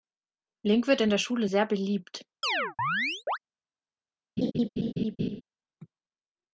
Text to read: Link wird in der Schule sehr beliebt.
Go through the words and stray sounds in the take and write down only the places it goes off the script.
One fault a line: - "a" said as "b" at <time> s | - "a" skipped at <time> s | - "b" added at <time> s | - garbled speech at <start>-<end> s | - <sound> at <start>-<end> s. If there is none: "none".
- chirp at 2.4-3.4 s
- laugh at 4.4-5.4 s